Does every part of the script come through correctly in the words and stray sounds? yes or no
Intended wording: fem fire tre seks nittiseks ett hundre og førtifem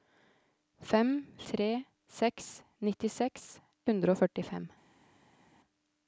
no